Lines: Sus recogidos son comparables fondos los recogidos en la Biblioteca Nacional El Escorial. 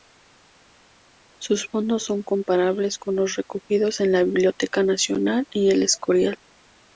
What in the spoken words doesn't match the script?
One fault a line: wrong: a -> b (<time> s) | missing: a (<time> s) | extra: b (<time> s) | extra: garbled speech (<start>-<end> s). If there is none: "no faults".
wrong: recogidos -> fondos (1.7 s)
wrong: fondos -> con (2.9 s)
extra: y (5.5 s)